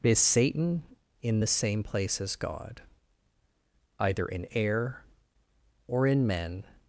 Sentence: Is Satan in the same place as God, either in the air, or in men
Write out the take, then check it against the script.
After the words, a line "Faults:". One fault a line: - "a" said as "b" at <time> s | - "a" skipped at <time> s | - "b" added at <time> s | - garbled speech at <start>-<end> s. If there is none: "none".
Is Satan in the same place as God, either in air, or in men
Faults:
- "the" skipped at 4.5 s